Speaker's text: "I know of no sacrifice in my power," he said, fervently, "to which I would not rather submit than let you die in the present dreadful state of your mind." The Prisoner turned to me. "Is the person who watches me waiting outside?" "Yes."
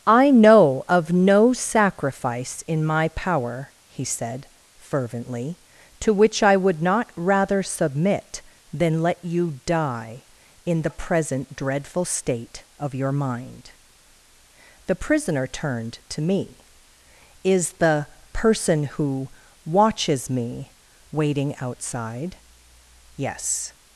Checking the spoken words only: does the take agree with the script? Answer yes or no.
yes